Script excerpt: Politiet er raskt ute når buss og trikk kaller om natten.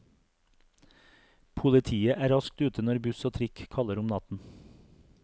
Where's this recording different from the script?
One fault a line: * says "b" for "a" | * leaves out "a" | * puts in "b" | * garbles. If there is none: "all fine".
all fine